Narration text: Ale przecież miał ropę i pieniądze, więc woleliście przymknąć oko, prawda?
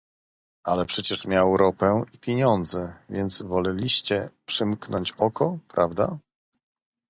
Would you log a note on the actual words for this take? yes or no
no